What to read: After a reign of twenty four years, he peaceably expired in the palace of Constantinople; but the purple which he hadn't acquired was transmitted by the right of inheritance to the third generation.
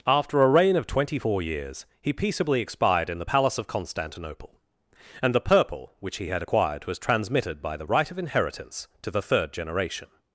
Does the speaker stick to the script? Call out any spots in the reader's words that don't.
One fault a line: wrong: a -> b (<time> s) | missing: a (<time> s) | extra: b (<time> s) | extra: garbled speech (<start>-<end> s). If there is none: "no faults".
wrong: but -> and (5.2 s)
wrong: hadn't -> had (6.3 s)